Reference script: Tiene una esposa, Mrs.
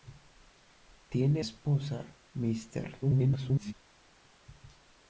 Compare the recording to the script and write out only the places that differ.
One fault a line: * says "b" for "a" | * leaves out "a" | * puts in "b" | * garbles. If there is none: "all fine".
* leaves out "una"
* garbles